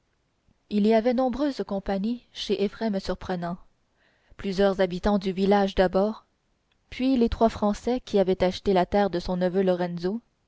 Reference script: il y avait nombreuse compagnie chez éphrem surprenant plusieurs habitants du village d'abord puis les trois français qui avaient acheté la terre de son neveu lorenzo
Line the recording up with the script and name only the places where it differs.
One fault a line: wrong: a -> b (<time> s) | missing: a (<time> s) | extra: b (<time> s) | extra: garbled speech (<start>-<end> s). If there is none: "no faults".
no faults